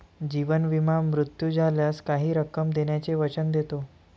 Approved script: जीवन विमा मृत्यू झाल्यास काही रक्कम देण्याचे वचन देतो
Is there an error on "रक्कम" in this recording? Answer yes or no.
no